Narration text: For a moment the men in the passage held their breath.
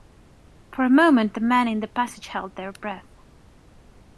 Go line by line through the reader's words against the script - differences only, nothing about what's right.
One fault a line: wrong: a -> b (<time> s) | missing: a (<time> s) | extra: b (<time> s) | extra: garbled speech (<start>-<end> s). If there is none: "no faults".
no faults